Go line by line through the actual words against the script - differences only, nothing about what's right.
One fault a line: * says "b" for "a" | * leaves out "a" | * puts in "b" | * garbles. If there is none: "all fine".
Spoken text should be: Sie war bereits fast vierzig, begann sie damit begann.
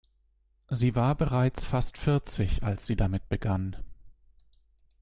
* says "als" for "begann"